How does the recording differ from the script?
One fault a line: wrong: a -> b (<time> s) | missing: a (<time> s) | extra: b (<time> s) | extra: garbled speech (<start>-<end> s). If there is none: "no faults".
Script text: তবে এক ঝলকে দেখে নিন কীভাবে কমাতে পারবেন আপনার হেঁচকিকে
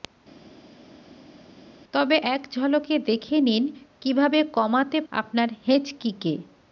missing: পারবেন (5.0 s)